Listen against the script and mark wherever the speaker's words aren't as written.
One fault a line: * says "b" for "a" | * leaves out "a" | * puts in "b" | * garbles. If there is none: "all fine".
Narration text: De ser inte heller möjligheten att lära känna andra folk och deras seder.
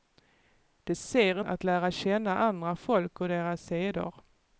* leaves out "inte heller möjligheten"